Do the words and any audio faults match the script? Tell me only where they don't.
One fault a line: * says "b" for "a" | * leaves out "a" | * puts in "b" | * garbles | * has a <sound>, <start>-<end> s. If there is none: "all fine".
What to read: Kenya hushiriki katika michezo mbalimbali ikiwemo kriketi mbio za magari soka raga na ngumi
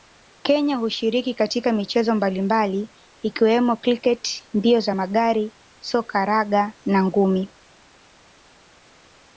all fine